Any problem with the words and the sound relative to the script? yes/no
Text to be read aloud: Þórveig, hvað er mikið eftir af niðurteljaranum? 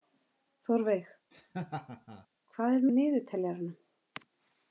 yes